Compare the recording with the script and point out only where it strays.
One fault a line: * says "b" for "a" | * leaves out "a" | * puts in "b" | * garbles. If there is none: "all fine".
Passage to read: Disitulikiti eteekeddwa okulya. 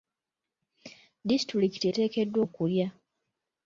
all fine